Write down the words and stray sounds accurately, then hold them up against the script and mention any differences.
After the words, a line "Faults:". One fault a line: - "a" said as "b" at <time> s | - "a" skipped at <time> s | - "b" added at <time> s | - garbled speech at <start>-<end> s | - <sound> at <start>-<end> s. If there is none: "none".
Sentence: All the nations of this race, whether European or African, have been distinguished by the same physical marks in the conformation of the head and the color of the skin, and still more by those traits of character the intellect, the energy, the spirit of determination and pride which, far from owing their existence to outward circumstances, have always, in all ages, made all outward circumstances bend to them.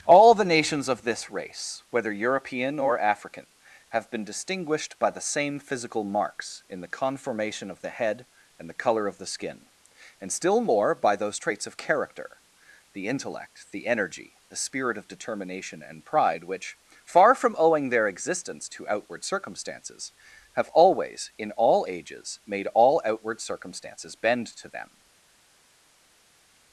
All the nations of this race, whether European or African, have been distinguished by the same physical marks in the conformation of the head and the color of the skin, and still more by those traits of character the intellect, the energy, the spirit of determination and pride which, far from owing their existence to outward circumstances, have always, in all ages, made all outward circumstances bend to them.
Faults:
none